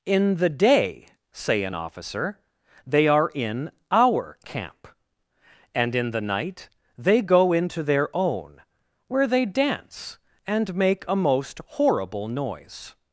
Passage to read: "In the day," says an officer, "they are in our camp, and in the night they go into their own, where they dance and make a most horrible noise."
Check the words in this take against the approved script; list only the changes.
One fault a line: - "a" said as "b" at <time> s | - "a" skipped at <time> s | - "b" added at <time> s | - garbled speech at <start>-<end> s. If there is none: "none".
- "says" said as "say" at 1.3 s